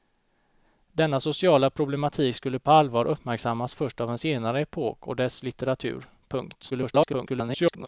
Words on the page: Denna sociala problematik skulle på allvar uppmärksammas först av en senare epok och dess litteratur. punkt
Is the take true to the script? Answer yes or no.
no